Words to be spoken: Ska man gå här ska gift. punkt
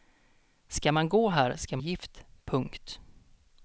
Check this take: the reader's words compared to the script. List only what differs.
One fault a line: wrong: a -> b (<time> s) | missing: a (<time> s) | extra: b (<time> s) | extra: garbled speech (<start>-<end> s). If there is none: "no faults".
no faults